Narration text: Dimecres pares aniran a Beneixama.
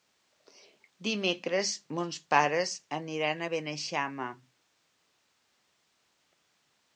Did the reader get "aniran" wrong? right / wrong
right